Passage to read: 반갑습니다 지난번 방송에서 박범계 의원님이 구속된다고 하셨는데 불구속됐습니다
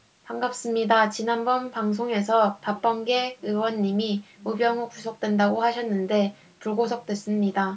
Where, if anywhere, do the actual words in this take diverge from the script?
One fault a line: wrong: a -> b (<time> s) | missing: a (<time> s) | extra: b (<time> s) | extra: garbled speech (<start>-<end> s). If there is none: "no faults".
extra: 우병우 (4.5 s)